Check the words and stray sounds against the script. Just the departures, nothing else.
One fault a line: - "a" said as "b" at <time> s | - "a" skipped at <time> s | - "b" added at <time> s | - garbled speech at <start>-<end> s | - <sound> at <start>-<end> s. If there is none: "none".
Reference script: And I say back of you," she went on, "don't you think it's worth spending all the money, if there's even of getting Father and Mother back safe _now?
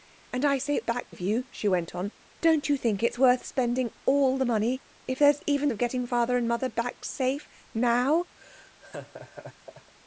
- laugh at 8.4-9.9 s